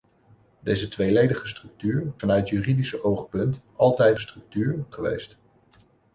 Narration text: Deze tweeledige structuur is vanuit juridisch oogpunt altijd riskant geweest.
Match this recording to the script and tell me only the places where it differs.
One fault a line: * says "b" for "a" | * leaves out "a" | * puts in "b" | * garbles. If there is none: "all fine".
* leaves out "is"
* says "structuur" for "riskant"